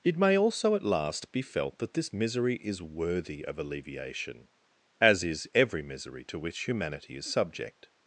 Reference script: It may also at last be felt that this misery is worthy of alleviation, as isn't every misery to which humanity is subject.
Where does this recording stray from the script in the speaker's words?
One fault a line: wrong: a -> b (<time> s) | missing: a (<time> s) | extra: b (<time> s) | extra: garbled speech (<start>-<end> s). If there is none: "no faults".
wrong: isn't -> is (5.2 s)